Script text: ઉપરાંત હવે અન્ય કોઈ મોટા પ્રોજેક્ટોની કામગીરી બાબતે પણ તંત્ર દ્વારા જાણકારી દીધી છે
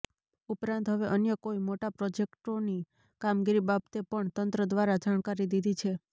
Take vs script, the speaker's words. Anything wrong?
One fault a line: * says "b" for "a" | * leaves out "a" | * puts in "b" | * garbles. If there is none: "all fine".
all fine